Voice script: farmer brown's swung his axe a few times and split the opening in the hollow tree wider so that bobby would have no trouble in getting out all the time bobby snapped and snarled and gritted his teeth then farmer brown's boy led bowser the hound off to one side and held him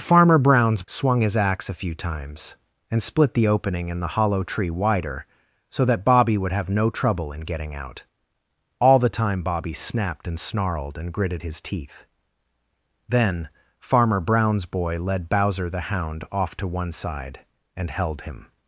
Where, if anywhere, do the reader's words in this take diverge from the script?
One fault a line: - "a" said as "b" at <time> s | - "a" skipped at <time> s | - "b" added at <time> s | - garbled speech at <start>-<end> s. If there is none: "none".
none